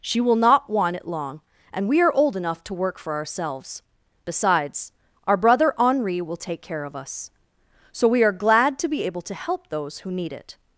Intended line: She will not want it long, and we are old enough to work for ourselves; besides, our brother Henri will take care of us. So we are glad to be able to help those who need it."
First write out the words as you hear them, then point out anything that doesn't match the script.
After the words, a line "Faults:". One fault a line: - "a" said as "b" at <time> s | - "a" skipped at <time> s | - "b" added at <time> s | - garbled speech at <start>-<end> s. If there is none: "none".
She will not want it long, and we are old enough to work for ourselves; besides, our brother Henri will take care of us. So we are glad to be able to help those who need it."
Faults:
none